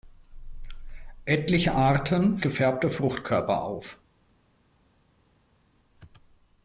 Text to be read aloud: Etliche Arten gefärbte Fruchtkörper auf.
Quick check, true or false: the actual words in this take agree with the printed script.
true